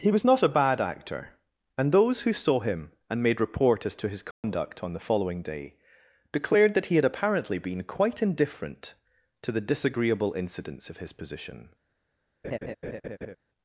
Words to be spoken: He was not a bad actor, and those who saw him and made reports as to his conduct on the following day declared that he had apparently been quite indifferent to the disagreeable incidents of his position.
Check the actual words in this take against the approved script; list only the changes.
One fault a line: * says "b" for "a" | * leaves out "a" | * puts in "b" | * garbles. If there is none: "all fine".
* says "report" for "reports"